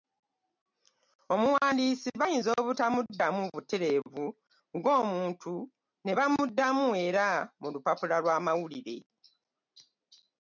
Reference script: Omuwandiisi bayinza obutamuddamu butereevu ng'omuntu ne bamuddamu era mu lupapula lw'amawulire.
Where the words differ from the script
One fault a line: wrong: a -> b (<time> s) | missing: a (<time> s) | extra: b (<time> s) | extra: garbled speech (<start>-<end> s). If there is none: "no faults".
no faults